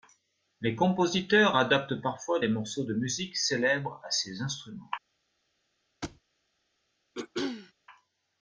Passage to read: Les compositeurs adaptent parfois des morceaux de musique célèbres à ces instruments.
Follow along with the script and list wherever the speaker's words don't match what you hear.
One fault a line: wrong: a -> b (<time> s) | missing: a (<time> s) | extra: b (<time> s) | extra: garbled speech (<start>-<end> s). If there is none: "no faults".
no faults